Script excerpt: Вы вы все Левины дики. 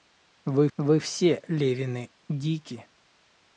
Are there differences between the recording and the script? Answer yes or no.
no